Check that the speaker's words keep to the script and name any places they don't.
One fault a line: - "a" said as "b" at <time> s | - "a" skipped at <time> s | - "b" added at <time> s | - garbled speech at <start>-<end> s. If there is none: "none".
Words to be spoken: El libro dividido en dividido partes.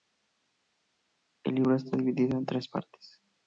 - "está" added at 1.7 s
- "dividido" said as "tres" at 2.4 s